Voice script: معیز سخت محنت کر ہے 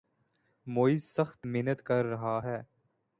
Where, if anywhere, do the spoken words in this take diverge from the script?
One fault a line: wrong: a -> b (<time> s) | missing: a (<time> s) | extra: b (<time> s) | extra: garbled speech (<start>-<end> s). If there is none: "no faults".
extra: رہا (2.0 s)